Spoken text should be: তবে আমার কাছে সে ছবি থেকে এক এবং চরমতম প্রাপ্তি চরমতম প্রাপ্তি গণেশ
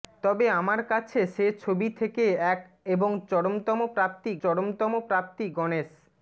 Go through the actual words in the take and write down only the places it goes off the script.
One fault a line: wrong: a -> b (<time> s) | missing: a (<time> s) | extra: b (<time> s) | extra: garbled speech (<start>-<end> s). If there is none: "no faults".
no faults